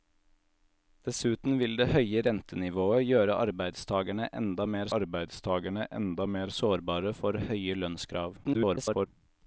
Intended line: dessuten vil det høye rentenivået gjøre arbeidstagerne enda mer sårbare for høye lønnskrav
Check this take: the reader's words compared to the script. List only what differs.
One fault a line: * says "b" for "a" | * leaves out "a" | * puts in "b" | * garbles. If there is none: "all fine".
* puts in "arbeidstagerne enda mer"
* garbles